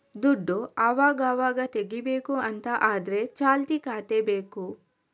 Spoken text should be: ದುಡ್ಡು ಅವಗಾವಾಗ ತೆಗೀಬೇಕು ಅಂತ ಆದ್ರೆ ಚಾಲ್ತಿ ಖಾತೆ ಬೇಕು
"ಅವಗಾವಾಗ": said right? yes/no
yes